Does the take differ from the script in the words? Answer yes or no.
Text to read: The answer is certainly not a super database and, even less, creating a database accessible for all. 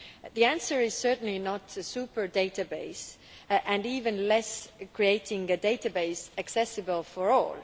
no